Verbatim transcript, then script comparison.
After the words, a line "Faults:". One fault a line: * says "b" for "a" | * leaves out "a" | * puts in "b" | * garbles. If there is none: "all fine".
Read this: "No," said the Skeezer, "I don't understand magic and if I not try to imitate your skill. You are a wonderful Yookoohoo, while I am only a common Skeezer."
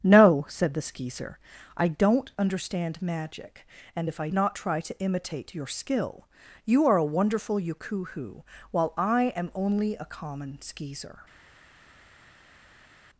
"No," said the Skeezer, "I don't understand magic and if I not try to imitate your skill. You are a wonderful Yookoohoo, while I am only a common Skeezer."
Faults:
all fine